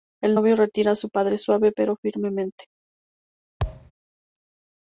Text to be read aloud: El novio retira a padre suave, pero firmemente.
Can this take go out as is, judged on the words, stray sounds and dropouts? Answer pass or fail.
fail